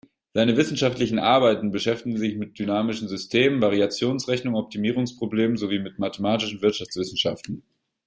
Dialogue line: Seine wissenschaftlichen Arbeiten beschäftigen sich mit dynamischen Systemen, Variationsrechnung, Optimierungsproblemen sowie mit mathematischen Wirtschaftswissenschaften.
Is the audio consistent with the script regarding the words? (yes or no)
yes